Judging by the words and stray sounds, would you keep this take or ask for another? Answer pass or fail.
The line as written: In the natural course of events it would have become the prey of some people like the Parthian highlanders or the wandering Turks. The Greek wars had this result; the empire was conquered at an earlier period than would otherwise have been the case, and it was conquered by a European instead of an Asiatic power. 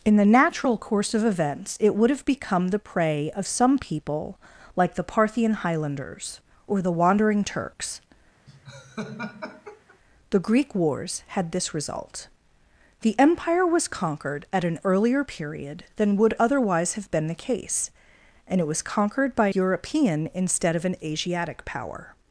fail